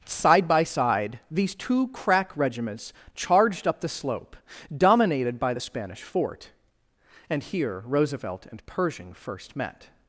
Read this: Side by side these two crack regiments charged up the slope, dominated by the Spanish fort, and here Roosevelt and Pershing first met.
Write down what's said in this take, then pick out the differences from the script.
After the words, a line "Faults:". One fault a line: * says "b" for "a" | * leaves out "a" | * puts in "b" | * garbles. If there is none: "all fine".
Side by side these two crack regiments charged up the slope, dominated by the Spanish fort, and here Roosevelt and Pershing first met.
Faults:
all fine